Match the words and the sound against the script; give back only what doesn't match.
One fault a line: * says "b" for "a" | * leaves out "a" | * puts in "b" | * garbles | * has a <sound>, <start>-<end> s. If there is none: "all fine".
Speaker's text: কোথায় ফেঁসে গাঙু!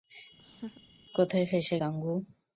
* has a laugh, 0.4-0.8 s